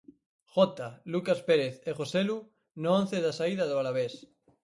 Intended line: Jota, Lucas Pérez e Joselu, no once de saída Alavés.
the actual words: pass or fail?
fail